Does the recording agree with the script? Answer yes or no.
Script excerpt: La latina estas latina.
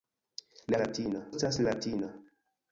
yes